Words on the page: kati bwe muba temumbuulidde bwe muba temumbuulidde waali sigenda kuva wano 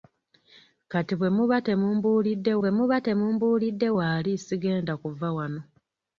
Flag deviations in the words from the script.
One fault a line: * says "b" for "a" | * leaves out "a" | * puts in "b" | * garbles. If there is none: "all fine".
all fine